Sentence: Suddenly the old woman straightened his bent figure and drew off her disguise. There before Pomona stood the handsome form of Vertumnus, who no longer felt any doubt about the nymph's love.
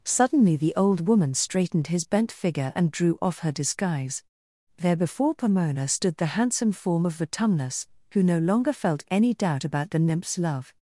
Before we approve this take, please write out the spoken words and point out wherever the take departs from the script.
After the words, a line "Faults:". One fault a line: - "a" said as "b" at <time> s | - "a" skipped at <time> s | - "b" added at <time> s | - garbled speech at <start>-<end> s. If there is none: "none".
Suddenly the old woman straightened his bent figure and drew off her disguise. There before Pomona stood the handsome form of Vertumnus, who no longer felt any doubt about the nymph's love.
Faults:
none